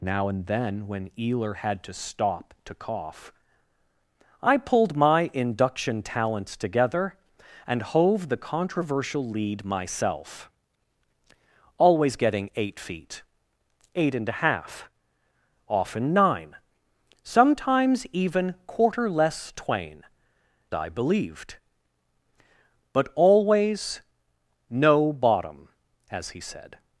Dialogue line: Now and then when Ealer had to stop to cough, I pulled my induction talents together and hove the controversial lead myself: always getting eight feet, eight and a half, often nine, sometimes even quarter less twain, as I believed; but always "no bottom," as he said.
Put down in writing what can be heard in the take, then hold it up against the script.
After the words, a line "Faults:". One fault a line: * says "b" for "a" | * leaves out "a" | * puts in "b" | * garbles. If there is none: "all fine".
Now and then when Ealer had to stop to cough, I pulled my induction talents together and hove the controversial lead myself: always getting eight feet, eight and a half, often nine, sometimes even quarter less twain, I believed; but always "no bottom," as he said.
Faults:
* leaves out "as"